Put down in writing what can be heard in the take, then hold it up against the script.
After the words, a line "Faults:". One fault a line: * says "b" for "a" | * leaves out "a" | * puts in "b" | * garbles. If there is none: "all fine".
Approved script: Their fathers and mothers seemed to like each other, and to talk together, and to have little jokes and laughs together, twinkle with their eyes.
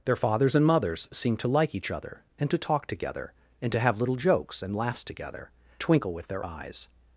Their fathers and mothers seemed to like each other, and to talk together, and to have little jokes and laughs together, twinkle with their eyes.
Faults:
all fine